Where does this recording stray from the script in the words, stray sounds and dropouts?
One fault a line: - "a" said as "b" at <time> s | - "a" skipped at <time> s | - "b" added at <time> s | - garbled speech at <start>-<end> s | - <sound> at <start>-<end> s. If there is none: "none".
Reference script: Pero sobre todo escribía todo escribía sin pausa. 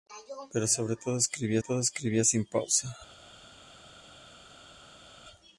none